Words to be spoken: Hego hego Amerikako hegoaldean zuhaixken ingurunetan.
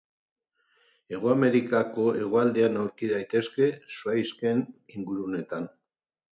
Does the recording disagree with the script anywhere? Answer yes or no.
yes